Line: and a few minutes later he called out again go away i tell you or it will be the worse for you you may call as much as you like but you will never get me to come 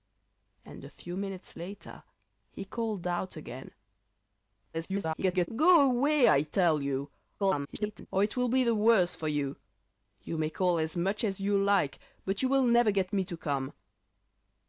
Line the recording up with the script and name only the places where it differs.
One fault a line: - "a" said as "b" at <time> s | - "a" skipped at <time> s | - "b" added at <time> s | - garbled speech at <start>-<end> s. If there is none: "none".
- garbled speech at 4.7-5.5 s
- garbled speech at 7.4-8.1 s